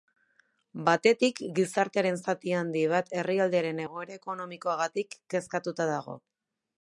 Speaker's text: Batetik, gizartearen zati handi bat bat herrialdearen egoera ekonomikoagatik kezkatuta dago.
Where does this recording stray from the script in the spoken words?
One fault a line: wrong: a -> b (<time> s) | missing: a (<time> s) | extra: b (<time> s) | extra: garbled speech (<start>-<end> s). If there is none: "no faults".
missing: bat (3.1 s)